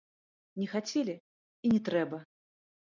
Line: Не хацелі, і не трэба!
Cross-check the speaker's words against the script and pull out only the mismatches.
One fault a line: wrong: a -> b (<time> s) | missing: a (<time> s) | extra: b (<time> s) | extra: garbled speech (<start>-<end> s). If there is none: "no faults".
no faults